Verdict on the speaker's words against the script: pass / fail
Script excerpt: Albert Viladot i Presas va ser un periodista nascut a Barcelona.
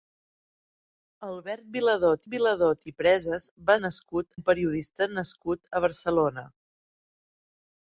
fail